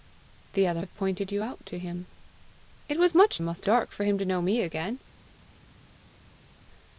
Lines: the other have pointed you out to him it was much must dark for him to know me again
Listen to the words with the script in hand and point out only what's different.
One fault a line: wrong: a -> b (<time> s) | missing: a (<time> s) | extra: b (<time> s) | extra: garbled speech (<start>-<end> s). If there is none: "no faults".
no faults